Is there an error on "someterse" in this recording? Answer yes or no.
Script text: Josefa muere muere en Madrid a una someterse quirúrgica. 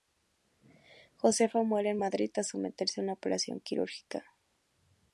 yes